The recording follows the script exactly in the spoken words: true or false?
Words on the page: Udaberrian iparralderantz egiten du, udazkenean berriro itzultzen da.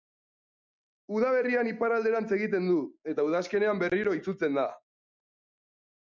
false